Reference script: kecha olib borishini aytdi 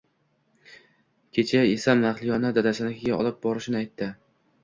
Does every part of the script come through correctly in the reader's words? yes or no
no